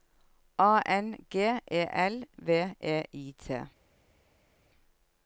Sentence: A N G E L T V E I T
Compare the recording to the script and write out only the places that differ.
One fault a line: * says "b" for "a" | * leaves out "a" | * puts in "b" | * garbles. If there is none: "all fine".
* leaves out "T"